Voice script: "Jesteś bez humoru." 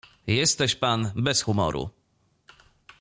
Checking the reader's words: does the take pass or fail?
fail